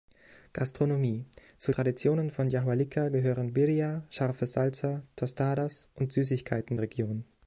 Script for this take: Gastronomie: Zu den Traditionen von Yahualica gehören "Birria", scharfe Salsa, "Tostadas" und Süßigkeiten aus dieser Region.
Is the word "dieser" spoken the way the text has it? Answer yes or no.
no